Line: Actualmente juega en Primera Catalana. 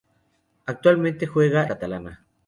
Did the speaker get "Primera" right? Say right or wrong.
wrong